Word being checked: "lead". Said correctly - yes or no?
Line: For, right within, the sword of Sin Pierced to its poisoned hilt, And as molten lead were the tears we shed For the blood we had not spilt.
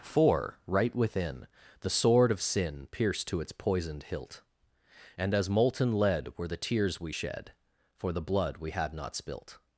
yes